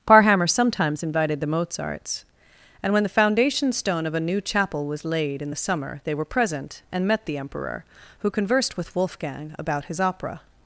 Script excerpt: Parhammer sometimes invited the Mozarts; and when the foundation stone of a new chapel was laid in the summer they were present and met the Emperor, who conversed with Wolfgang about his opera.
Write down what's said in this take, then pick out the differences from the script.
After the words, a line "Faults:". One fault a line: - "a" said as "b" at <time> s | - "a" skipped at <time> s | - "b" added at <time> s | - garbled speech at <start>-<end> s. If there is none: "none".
Parhammer sometimes invited the Mozarts; and when the foundation stone of a new chapel was laid in the summer they were present and met the Emperor, who conversed with Wolfgang about his opera.
Faults:
none